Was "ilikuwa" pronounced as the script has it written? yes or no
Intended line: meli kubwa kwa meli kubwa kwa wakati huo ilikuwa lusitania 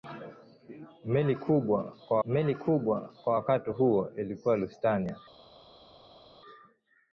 yes